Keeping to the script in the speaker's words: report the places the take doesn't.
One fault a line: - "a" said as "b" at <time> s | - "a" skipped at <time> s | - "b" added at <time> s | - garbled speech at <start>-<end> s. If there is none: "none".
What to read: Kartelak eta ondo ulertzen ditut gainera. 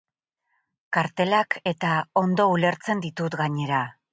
none